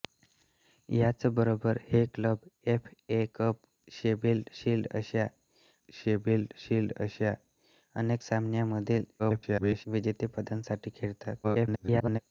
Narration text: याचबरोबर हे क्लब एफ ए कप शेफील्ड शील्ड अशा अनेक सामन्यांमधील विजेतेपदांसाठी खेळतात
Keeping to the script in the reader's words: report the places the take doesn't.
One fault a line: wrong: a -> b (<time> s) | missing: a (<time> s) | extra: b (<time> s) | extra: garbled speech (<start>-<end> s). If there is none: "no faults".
extra: शेफील्ड शील्ड अशा (5.9 s)
extra: garbled speech (9.2-9.9 s)
extra: garbled speech (11.4-12.2 s)